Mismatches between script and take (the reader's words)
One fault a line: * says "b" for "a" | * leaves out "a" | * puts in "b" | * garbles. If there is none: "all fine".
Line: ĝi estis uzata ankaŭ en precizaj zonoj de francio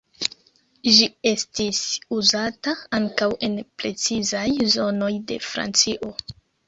all fine